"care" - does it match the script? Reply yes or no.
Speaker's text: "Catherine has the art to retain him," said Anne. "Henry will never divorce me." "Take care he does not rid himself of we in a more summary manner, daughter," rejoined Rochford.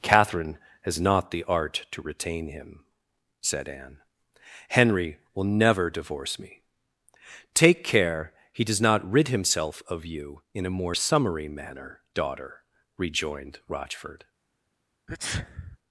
yes